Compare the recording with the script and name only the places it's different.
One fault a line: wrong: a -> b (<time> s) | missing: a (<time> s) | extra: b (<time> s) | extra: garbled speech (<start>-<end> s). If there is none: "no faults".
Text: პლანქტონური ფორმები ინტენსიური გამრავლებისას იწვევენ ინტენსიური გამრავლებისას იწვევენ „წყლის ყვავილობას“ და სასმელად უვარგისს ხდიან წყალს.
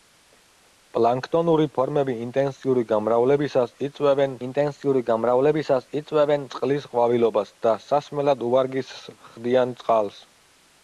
no faults